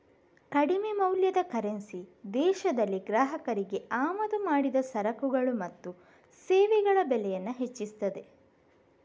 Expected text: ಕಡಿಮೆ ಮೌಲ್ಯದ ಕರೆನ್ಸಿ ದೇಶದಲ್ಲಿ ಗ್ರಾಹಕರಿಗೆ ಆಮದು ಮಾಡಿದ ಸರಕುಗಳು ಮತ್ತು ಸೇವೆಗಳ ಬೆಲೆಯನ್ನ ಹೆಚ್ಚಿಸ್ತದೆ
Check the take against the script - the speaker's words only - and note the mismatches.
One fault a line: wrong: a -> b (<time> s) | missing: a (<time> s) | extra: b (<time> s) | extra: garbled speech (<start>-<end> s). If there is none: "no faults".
no faults